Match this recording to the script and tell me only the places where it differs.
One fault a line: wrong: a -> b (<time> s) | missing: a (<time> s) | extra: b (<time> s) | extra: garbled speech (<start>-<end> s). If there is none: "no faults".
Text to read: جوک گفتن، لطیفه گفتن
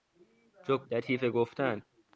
missing: گفتن (0.9 s)